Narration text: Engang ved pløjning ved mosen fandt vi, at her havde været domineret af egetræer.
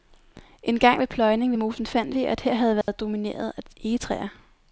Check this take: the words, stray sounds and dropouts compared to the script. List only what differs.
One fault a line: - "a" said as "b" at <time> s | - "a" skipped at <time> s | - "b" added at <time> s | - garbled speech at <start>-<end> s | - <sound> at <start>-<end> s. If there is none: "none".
- dropout at 2.8-2.9 s